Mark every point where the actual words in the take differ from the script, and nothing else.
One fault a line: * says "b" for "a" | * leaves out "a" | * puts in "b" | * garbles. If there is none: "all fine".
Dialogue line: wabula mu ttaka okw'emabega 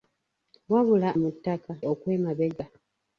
all fine